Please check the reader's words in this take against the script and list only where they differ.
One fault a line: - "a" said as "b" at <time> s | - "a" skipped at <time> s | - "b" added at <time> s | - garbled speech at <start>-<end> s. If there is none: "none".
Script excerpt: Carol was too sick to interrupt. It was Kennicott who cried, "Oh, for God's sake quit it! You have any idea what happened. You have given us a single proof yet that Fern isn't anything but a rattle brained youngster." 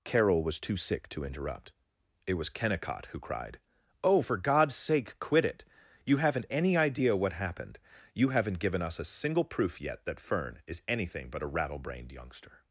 - "have" said as "haven't" at 6.2 s
- "have" said as "haven't" at 8.3 s
- "isn't" said as "is" at 10.7 s